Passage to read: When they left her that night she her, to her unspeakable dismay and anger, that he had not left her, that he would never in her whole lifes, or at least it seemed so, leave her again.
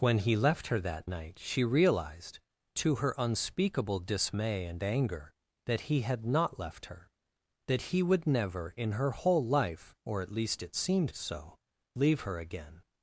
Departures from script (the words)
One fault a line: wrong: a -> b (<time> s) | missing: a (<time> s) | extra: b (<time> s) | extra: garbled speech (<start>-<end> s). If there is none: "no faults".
wrong: they -> he (0.2 s)
wrong: her -> realized (1.6 s)
wrong: lifes -> life (9.4 s)